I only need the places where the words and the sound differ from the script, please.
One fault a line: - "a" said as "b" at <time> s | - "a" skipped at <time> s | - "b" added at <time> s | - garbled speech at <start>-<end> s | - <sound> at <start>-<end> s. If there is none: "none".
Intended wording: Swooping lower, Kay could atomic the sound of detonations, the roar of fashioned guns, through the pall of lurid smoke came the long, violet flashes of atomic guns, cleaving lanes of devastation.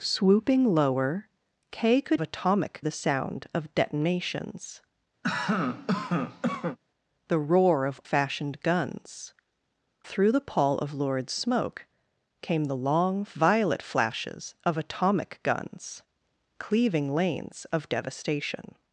- cough at 5.2-6.8 s